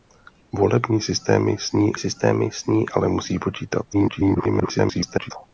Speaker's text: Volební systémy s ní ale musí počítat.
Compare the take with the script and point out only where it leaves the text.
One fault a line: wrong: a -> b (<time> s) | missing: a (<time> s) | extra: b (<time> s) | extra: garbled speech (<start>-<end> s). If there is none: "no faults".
extra: systémy s ní (2.0 s)
extra: garbled speech (3.9-5.3 s)